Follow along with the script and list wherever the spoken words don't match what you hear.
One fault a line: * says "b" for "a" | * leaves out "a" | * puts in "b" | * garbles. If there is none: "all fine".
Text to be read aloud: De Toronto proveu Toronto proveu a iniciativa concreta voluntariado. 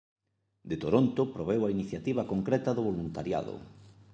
* leaves out "Toronto proveu"
* puts in "do"